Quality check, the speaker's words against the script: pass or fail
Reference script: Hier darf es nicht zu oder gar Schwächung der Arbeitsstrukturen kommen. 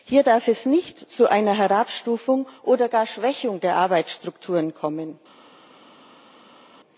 fail